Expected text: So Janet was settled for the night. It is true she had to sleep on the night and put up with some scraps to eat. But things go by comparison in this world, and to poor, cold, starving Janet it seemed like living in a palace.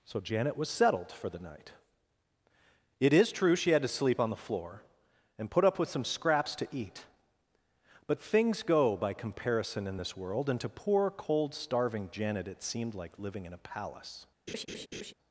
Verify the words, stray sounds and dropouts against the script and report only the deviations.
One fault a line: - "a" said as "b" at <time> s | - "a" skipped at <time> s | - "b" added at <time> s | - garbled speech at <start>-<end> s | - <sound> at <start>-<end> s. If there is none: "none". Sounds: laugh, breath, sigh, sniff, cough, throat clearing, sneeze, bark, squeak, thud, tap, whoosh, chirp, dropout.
- "night" said as "floor" at 4.4 s
- laugh at 14.5-15.1 s